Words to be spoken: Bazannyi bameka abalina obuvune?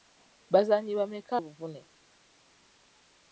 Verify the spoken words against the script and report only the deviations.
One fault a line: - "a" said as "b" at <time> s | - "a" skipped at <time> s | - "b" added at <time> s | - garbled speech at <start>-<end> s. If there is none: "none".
- "abalina" skipped at 1.3 s